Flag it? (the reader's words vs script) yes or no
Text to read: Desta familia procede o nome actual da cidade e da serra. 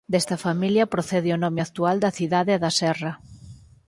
no